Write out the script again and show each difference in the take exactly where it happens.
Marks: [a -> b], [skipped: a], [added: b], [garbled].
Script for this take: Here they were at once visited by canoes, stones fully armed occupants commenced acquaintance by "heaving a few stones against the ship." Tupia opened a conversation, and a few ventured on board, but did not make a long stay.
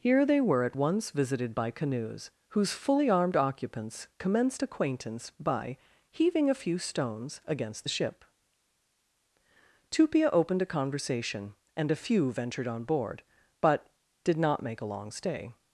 Here they were at once visited by canoes, [stones -> whose] fully armed occupants commenced acquaintance by "heaving a few stones against the ship." Tupia opened a conversation, and a few ventured on board, but did not make a long stay.